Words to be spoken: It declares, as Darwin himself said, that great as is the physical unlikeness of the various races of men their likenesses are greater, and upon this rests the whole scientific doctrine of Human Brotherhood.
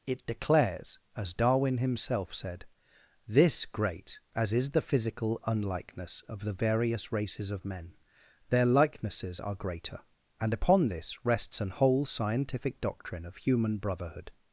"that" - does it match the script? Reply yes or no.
no